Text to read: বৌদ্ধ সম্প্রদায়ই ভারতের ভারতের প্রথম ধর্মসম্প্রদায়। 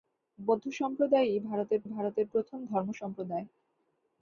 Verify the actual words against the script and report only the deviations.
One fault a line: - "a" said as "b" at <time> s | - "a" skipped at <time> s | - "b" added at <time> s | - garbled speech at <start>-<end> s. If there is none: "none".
none